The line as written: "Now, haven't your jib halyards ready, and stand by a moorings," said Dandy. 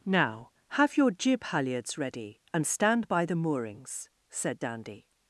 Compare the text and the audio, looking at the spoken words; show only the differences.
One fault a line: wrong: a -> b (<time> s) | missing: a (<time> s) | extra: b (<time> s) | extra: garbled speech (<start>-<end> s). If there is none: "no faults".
wrong: haven't -> have (0.7 s)
wrong: a -> the (3.2 s)